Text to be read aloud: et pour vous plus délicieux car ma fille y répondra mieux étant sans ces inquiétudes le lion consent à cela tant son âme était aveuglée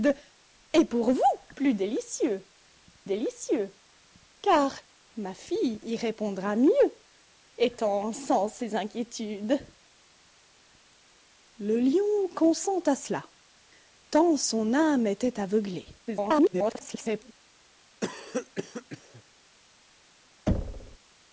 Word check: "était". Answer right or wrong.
right